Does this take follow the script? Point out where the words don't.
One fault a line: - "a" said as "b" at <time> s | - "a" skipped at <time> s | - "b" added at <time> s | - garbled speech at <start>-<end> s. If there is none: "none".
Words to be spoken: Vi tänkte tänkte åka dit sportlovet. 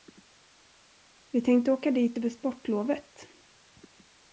- "tänkte" skipped at 1.7 s
- "över" added at 2.2 s